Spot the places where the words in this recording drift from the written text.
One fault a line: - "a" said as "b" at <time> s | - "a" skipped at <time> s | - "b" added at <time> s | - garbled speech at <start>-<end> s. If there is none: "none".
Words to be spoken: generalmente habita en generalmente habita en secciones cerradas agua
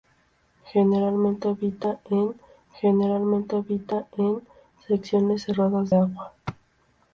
none